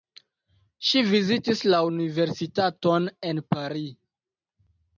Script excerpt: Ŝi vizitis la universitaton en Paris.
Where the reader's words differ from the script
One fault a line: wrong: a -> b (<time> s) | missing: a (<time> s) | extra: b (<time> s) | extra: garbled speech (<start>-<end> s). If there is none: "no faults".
no faults